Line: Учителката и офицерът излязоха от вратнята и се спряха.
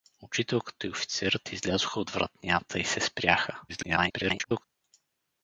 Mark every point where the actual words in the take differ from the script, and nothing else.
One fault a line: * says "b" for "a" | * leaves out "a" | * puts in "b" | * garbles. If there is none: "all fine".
* garbles